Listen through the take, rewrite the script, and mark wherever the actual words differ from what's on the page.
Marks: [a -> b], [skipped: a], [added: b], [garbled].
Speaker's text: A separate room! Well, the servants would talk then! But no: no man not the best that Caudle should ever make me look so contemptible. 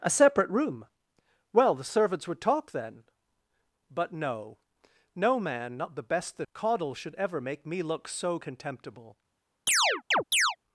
A separate room! Well, the servants would talk then! But no: no man not the best that Caudle should ever make me look so contemptible.